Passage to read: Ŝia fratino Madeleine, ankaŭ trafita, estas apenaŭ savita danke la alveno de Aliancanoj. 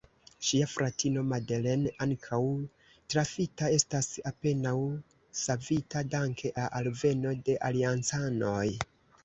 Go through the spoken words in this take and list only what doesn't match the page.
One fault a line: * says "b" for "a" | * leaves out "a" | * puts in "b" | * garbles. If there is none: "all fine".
all fine